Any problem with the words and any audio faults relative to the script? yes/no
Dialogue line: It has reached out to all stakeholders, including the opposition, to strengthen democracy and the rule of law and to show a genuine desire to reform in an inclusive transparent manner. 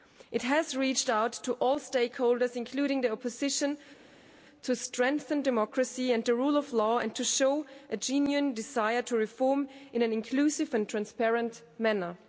yes